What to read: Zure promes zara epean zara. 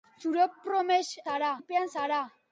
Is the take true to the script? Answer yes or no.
yes